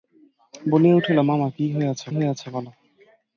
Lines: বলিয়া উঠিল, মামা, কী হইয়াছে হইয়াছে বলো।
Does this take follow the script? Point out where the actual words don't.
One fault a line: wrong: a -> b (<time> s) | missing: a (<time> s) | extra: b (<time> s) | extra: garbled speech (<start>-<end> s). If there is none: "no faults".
no faults